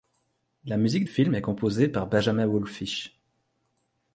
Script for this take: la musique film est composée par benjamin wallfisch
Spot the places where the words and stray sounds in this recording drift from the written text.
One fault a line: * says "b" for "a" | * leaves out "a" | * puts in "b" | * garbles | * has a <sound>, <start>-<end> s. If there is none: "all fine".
all fine